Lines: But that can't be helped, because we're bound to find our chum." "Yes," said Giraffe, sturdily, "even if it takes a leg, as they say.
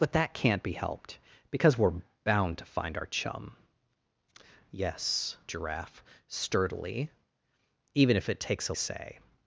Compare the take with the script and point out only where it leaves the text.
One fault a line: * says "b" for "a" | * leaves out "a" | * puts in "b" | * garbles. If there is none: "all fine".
* leaves out "said"
* leaves out "leg as they"